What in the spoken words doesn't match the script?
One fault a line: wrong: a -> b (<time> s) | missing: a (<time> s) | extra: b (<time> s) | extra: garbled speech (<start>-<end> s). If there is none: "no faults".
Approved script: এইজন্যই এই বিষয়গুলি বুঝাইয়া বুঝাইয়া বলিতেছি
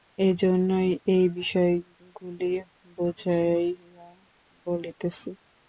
missing: বুঝাইয়া (4.1 s)